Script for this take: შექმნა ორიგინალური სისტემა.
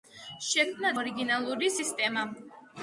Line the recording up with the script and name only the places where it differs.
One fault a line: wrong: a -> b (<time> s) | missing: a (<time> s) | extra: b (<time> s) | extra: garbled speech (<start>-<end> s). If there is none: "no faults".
no faults